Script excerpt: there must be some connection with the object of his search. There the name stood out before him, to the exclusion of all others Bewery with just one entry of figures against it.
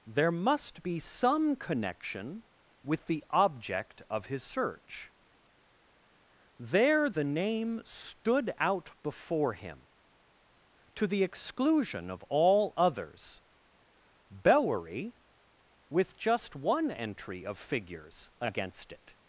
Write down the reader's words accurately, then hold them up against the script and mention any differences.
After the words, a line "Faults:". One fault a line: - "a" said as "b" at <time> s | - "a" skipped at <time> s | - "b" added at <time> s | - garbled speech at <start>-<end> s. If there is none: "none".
there must be some connection with the object of his search. There the name stood out before him, to the exclusion of all others Bewery with just one entry of figures against it.
Faults:
none